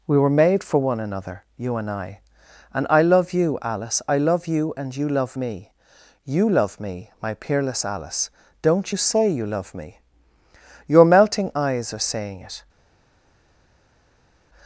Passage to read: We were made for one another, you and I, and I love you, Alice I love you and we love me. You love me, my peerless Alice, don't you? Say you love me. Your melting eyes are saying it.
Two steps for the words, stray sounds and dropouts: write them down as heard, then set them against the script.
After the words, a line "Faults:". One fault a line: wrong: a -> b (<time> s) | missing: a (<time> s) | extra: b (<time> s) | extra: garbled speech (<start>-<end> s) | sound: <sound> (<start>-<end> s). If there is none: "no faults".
We were made for one another, you and I, and I love you, Alice I love you and you love me. You love me, my peerless Alice, don't you? Say you love me. Your melting eyes are saying it.
Faults:
wrong: we -> you (5.0 s)